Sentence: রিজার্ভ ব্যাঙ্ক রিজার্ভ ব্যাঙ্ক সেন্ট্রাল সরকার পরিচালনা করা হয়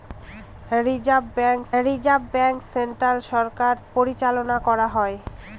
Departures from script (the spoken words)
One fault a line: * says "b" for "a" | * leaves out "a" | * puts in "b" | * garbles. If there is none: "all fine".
all fine